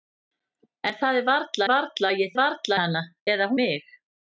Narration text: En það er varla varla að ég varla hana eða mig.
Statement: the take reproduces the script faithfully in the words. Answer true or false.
true